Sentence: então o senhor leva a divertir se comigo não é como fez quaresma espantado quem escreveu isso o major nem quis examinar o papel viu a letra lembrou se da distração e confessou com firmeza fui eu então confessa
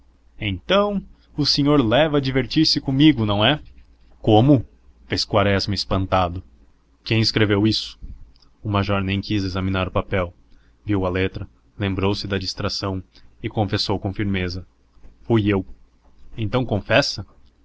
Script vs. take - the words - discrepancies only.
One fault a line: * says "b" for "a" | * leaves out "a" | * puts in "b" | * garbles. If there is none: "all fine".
all fine